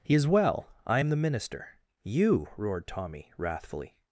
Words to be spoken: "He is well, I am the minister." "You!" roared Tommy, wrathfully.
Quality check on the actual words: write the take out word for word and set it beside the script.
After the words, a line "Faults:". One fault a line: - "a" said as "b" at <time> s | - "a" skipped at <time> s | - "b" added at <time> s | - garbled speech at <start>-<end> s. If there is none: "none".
"He is well, I am the minister." "You!" roared Tommy, wrathfully.
Faults:
none